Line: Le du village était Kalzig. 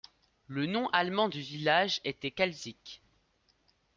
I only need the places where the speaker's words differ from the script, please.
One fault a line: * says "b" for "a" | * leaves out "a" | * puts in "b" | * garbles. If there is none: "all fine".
* puts in "nom allemand"